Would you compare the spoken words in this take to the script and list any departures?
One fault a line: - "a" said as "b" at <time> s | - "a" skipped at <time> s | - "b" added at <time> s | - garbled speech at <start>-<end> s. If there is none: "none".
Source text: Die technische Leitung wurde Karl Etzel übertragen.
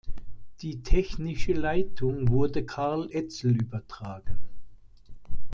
none